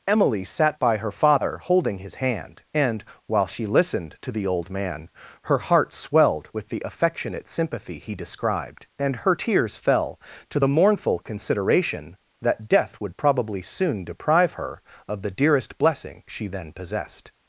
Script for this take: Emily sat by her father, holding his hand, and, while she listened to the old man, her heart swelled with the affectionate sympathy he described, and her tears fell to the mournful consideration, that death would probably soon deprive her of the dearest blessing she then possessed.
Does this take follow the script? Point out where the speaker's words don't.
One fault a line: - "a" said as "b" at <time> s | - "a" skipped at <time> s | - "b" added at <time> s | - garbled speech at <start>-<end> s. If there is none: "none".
none